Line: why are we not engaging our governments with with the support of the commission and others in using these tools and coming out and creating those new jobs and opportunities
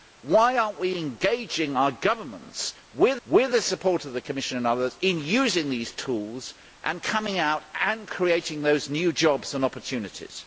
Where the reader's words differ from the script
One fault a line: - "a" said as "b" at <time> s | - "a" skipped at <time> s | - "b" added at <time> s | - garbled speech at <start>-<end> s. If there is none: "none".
none